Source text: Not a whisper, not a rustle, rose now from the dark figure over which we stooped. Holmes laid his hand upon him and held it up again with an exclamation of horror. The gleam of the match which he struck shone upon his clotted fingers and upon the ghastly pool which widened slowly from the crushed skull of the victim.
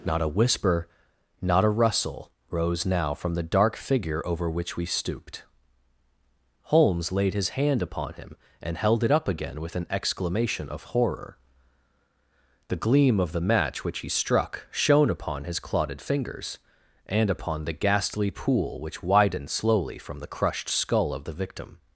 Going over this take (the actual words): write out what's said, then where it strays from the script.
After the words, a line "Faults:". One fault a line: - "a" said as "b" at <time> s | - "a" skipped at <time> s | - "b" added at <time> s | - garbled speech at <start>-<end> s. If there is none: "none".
Not a whisper, not a rustle, rose now from the dark figure over which we stooped. Holmes laid his hand upon him and held it up again with an exclamation of horror. The gleam of the match which he struck shone upon his clotted fingers and upon the ghastly pool which widened slowly from the crushed skull of the victim.
Faults:
none